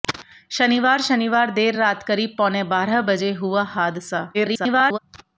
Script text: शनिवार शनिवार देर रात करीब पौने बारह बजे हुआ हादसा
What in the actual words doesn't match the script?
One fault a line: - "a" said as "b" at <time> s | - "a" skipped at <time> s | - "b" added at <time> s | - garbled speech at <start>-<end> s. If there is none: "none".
- garbled speech at 4.3-5.0 s